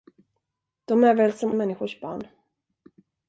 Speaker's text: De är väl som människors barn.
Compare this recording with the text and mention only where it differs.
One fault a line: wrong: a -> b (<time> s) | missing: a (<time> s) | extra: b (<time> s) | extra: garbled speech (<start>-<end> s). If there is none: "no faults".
no faults